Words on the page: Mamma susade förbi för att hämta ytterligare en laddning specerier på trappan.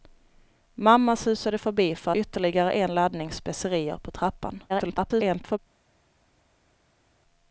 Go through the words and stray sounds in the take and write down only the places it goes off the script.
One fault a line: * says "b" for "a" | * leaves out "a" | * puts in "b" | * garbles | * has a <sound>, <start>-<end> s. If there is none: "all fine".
* leaves out "att hämta"
* garbles